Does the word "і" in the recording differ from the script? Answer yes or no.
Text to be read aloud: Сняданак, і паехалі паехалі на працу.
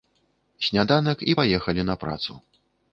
no